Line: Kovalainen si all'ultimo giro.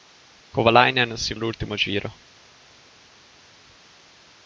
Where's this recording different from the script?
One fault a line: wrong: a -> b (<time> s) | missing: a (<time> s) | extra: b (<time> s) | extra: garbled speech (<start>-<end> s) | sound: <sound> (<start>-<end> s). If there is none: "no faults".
no faults